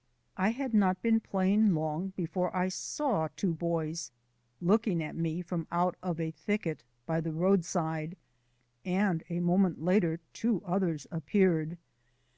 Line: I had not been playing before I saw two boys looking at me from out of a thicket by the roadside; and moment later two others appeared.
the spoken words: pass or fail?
fail